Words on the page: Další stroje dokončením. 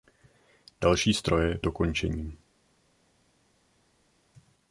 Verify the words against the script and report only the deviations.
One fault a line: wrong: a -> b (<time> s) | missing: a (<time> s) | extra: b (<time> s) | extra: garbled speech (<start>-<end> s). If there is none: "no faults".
no faults